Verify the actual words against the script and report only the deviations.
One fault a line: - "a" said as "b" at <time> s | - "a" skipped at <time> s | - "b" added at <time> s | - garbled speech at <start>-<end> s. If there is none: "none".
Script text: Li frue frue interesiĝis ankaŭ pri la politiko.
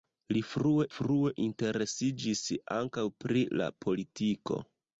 none